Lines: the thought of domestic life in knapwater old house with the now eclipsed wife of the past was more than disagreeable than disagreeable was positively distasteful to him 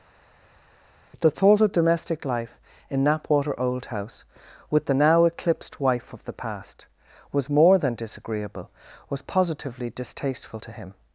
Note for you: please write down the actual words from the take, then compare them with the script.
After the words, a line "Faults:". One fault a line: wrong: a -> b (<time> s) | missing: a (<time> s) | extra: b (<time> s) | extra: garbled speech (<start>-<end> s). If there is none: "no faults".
the thought of domestic life in knapwater old house with the now eclipsed wife of the past was more than disagreeable was positively distasteful to him
Faults:
missing: than disagreeable (8.7 s)